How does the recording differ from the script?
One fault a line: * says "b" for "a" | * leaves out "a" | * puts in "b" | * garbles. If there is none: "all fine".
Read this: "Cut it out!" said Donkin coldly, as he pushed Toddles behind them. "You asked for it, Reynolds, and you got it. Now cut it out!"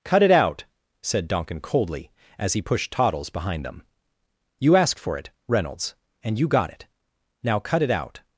all fine